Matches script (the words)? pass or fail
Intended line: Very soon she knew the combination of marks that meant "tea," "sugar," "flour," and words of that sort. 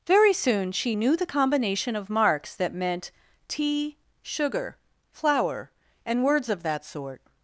pass